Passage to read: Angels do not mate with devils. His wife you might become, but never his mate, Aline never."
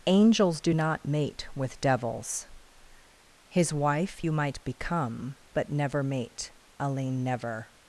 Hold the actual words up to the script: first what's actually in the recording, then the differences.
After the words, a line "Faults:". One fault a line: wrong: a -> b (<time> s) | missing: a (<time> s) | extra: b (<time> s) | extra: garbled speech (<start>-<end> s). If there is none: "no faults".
Angels do not mate with devils. His wife you might become, but never mate, Aline never."
Faults:
missing: his (6.0 s)